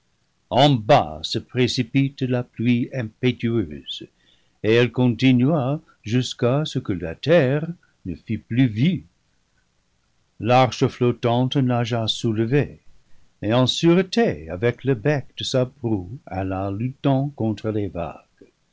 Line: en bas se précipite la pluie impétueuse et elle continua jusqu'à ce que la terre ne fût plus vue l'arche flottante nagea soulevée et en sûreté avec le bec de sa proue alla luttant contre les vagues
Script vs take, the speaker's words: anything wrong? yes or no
no